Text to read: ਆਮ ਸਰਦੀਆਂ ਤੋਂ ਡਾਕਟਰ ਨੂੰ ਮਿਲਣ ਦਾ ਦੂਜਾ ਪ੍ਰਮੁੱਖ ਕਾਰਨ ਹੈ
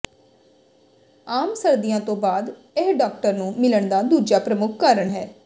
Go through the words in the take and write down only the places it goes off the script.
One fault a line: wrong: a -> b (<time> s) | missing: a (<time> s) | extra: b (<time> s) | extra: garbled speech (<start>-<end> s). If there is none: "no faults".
extra: ਬਾਅਦ ਇਹ (2.2 s)